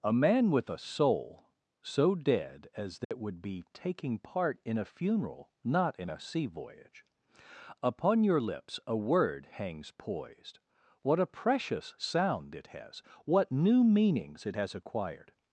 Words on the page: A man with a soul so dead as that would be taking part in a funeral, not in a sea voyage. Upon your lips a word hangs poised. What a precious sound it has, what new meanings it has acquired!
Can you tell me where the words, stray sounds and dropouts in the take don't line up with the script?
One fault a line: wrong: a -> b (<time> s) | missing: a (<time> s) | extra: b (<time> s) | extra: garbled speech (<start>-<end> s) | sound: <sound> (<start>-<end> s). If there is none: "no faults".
sound: dropout (3.0-3.1 s)